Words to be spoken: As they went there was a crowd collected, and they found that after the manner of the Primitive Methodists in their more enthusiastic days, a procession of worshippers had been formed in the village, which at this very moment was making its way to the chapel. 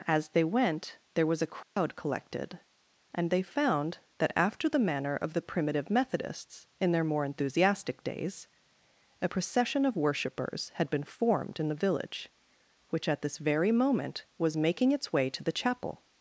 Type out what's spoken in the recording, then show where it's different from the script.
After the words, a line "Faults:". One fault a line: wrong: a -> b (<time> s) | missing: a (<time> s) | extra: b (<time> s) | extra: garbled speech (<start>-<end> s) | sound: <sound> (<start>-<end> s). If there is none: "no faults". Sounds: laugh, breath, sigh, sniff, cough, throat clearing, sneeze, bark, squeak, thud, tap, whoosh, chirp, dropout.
As they went there was a crowd collected, and they found that after the manner of the Primitive Methodists in their more enthusiastic days, a procession of worshippers had been formed in the village, which at this very moment was making its way to the chapel.
Faults:
sound: dropout (1.6-1.8 s)